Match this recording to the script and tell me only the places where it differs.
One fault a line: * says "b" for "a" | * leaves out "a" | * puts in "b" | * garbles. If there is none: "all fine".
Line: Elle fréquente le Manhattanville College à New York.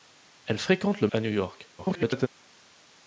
* leaves out "Manhattanville College"
* garbles